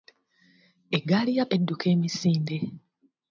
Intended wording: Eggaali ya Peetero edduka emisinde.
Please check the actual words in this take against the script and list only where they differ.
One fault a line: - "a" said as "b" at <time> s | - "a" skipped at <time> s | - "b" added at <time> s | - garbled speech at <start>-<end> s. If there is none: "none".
- "Peetero" skipped at 1.4 s